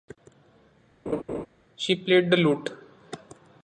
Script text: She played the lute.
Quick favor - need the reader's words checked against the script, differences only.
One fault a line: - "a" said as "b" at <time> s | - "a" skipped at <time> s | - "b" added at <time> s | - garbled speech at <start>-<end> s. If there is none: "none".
none